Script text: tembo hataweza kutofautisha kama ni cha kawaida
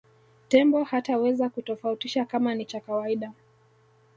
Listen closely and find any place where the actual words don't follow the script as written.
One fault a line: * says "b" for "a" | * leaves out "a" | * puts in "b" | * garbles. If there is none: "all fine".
all fine